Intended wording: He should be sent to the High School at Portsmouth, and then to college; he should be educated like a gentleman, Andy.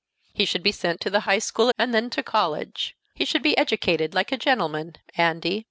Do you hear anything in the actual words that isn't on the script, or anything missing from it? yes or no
yes